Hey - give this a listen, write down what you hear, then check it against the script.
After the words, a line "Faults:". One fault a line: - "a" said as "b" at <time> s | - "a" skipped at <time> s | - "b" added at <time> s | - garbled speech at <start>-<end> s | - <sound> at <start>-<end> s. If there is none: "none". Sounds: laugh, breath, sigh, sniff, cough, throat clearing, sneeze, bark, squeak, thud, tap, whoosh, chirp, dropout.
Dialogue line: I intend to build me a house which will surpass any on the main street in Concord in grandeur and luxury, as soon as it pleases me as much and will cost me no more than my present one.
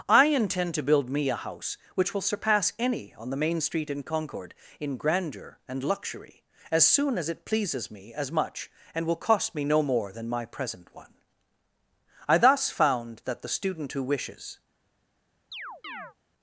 I intend to build me a house which will surpass any on the main street in Concord in grandeur and luxury, as soon as it pleases me as much and will cost me no more than my present one. I thus found that the student who wishes
Faults:
- "I thus found that the student who wishes" added at 12.3 s
- chirp at 15.5-16.1 s